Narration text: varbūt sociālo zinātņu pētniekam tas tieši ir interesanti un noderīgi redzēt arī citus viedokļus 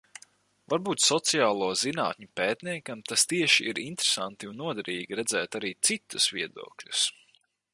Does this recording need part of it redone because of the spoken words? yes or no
no